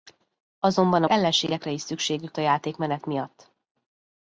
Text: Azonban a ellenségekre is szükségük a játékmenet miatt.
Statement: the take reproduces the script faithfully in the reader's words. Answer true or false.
true